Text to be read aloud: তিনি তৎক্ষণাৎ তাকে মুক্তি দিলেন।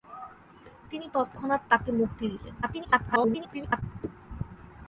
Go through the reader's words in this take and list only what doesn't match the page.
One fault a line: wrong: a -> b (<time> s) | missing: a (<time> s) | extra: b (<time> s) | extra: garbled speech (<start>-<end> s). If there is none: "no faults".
extra: garbled speech (2.6-3.8 s)